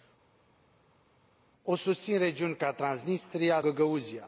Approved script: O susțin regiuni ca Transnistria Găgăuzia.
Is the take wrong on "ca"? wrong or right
right